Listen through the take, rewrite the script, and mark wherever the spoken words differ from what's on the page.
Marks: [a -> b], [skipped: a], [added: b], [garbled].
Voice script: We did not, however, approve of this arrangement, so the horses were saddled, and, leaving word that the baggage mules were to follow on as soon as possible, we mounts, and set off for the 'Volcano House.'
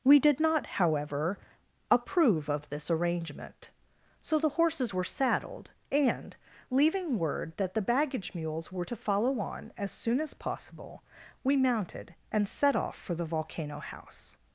We did not, however, approve of this arrangement, so the horses were saddled, and, leaving word that the baggage mules were to follow on as soon as possible, we [mounts, -> mounted] and set off for the 'Volcano House.'